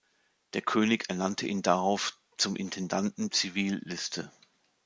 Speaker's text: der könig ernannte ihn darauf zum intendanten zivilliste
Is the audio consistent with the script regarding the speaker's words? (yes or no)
yes